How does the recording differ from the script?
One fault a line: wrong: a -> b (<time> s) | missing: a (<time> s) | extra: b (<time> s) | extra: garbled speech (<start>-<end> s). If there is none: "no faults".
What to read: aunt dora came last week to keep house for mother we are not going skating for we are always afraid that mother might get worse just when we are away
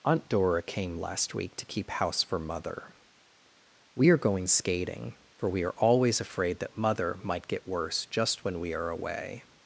missing: not (4.2 s)